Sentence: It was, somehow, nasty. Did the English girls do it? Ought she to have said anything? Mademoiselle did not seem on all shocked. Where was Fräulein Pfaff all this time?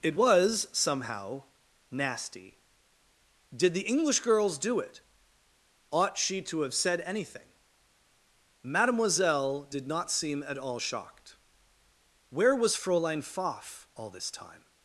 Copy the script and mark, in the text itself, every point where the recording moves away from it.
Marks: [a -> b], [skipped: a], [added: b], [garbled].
It was, somehow, nasty. Did the English girls do it? Ought she to have said anything? Mademoiselle did not seem [on -> at] all shocked. Where was Fräulein Pfaff all this time?